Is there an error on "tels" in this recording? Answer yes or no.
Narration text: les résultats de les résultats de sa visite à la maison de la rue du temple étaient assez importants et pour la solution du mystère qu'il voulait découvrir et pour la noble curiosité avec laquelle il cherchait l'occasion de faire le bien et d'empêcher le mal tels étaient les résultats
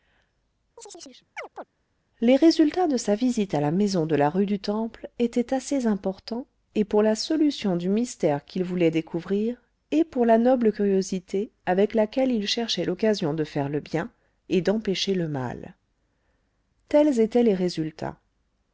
no